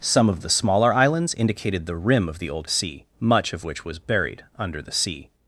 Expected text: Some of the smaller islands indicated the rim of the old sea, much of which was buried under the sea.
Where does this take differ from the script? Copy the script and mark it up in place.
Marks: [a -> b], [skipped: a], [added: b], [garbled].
Some of the smaller islands indicated the rim of the old sea, much of which was buried under the sea.